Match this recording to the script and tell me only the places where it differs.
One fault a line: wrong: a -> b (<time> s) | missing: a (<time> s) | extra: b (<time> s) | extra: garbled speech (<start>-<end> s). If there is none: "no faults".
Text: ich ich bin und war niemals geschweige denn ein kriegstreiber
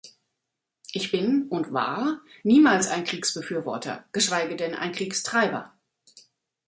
missing: ich (1.1 s)
extra: ein kriegsbefürworter (2.9 s)